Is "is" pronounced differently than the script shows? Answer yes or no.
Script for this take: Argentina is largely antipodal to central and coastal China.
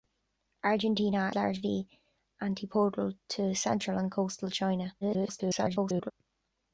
yes